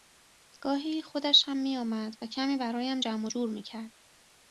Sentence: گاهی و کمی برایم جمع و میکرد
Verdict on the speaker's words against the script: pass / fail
fail